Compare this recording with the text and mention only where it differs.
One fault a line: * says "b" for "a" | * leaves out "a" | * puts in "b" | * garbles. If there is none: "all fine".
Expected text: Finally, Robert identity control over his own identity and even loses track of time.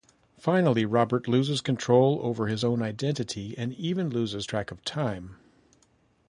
* says "loses" for "identity"